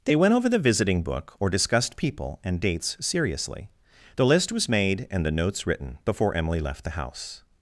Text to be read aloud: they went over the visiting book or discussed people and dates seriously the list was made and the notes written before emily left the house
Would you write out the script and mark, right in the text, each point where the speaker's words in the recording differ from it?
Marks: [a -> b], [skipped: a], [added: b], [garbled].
they went over the visiting book or discussed people and dates seriously the list was made and the notes written before emily left the house